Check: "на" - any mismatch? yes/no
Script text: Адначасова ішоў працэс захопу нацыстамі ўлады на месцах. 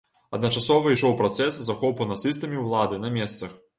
no